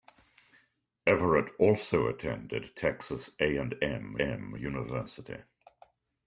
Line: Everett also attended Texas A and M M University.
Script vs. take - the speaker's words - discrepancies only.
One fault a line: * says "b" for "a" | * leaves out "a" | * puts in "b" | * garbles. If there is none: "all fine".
all fine